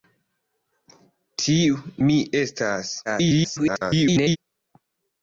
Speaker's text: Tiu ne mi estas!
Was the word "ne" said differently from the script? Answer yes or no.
yes